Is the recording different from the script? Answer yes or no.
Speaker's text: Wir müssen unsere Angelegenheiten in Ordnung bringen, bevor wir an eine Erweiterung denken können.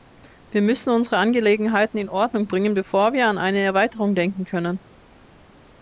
no